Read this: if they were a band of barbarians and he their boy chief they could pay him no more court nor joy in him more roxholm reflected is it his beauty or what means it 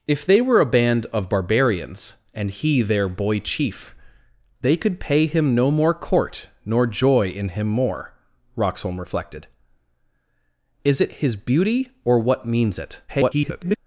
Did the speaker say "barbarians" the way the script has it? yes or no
yes